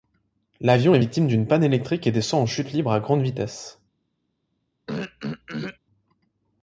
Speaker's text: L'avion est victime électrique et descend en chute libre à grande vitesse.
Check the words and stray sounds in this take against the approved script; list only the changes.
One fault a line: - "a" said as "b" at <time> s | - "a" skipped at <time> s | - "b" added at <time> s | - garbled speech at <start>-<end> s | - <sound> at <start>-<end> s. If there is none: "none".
- "d'une panne" added at 1.3 s
- throat clearing at 4.9-5.8 s